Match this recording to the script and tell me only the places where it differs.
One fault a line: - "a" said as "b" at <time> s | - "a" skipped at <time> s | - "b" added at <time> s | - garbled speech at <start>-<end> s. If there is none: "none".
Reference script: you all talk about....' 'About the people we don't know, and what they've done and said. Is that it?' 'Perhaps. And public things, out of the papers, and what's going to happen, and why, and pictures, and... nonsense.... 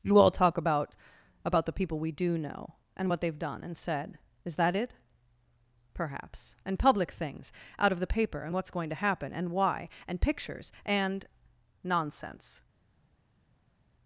- "don't" said as "do" at 2.1 s
- "papers" said as "paper" at 8.1 s